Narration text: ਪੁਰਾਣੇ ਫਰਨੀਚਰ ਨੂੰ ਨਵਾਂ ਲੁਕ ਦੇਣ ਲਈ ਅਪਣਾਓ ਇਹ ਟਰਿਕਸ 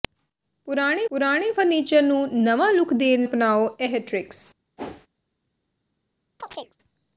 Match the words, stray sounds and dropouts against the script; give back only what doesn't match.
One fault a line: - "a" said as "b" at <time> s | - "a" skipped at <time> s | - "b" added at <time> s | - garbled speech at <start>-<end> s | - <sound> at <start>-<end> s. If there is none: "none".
- "ਪੁਰਾਣੇ" added at 1.1 s
- "ਲਈ" skipped at 3.2 s
- whoosh at 4.8-5.1 s
- chirp at 6.4-6.8 s